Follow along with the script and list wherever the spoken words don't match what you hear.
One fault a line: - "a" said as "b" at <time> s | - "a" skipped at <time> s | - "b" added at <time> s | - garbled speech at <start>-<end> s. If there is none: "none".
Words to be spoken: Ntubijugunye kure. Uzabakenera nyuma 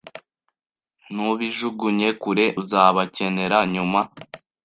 none